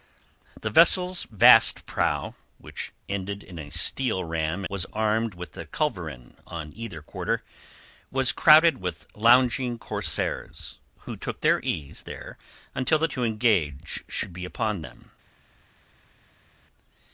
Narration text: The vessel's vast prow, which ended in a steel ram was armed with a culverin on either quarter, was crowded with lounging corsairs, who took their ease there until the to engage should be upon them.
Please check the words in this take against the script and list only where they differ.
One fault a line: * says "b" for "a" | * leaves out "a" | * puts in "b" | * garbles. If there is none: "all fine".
all fine